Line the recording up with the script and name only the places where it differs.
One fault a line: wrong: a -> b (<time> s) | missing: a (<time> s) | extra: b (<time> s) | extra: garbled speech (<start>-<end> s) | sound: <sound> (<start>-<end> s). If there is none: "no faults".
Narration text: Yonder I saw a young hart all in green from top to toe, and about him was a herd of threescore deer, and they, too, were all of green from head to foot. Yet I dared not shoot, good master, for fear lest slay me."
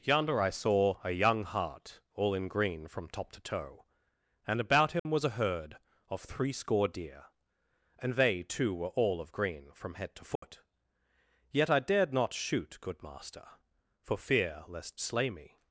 sound: dropout (5.0-5.1 s)
sound: dropout (10.4-10.4 s)